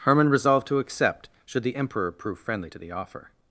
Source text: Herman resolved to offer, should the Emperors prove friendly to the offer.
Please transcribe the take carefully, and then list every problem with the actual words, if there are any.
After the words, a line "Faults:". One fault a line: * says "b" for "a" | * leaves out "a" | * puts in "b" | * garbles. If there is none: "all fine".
Herman resolved to accept, should the Emperor prove friendly to the offer.
Faults:
* says "accept" for "offer"
* says "Emperor" for "Emperors"